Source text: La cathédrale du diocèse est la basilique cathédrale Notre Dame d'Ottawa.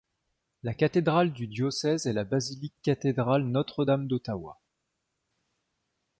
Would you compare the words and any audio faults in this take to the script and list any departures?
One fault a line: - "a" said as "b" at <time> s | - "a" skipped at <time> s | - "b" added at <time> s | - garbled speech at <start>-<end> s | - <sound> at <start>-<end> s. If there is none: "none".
none